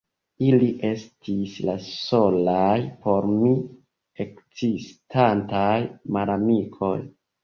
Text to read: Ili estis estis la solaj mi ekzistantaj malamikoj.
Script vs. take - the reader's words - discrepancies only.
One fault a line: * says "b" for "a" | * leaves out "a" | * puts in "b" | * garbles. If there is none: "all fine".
* leaves out "estis"
* puts in "por"